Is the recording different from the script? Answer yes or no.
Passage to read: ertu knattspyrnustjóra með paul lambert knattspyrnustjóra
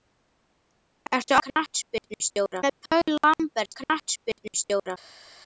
no